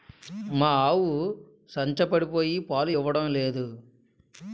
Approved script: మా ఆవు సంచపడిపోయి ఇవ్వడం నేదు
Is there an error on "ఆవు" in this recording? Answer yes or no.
no